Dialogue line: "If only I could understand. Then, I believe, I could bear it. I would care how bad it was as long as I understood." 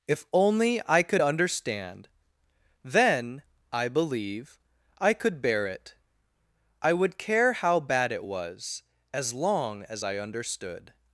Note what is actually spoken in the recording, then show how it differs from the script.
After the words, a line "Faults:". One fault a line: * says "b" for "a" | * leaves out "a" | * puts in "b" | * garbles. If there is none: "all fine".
"If only I could understand. Then, I believe, I could bear it. I would care how bad it was as long as I understood."
Faults:
all fine